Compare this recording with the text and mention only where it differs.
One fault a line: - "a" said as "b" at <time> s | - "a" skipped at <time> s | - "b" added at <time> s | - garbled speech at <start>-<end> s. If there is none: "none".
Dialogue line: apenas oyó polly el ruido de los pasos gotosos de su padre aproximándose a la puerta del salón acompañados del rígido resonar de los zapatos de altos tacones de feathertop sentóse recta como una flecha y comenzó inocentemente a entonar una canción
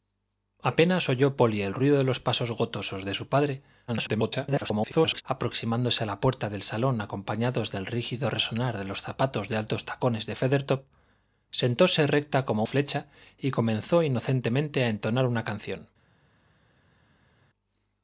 - garbled speech at 3.9-5.2 s
- "una" skipped at 12.7 s